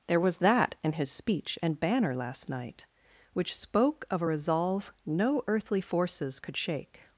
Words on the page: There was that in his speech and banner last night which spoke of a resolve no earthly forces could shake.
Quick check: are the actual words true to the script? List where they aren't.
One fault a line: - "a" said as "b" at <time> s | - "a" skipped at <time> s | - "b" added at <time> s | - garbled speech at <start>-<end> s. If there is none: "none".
none